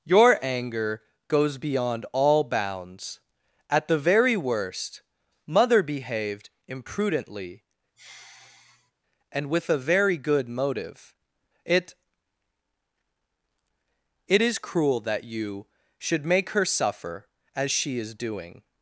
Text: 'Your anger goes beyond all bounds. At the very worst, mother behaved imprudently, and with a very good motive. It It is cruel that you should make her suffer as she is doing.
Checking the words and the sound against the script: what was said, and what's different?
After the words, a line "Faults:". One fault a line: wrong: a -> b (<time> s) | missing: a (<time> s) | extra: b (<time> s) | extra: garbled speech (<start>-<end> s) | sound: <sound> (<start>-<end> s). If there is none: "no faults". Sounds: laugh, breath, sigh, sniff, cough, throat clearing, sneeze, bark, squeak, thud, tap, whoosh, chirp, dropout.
'Your anger goes beyond all bounds. At the very worst, mother behaved imprudently, and with a very good motive. It It is cruel that you should make her suffer as she is doing.
Faults:
sound: sigh (8.0-8.9 s)